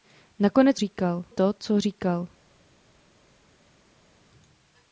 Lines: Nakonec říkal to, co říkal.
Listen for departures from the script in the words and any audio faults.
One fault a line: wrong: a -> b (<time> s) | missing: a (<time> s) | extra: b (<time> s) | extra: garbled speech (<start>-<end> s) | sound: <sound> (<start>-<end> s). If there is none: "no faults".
no faults